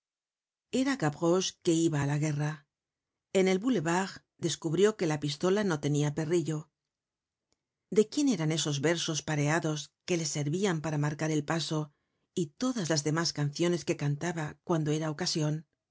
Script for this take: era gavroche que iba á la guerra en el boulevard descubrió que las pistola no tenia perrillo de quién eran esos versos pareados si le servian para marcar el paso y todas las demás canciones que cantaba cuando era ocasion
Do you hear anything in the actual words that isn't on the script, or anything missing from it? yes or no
yes